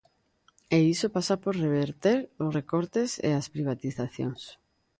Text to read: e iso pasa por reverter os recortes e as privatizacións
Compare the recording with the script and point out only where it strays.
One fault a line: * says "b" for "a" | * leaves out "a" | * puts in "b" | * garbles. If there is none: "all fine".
all fine